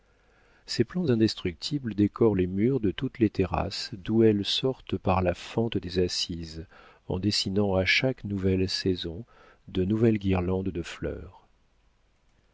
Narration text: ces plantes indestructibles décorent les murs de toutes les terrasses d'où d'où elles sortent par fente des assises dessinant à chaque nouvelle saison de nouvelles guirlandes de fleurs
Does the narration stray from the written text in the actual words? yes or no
yes